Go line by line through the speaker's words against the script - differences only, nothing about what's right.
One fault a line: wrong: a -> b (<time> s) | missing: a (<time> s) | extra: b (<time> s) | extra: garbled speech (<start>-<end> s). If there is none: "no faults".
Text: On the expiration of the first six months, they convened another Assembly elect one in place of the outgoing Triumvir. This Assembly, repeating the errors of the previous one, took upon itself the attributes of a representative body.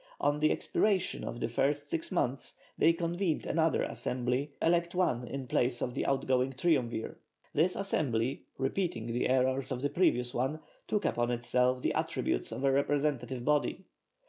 no faults